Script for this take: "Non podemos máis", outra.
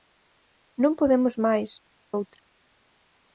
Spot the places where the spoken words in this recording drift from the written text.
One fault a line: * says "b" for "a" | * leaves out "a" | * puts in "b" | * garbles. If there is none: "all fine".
all fine